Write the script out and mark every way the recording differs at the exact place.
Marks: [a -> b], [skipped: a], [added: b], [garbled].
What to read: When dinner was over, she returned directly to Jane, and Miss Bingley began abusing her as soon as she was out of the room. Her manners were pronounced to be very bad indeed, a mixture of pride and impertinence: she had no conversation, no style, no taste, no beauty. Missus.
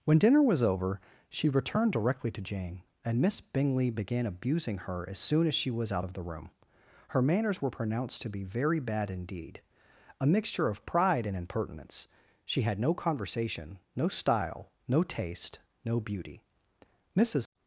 When dinner was over, she returned directly to Jane, and Miss Bingley began abusing her as soon as she was out of the room. Her manners were pronounced to be very bad indeed, a mixture of pride and impertinence: she had no conversation, no style, no taste, no beauty. Missus.